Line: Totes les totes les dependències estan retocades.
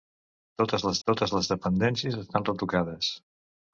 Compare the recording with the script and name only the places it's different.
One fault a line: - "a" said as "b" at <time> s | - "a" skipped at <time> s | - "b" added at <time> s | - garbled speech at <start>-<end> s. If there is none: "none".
none